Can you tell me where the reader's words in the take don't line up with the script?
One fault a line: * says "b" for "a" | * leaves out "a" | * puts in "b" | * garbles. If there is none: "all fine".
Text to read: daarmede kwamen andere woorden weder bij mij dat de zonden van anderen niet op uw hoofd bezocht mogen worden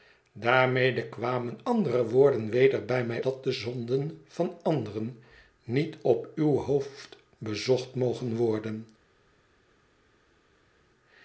all fine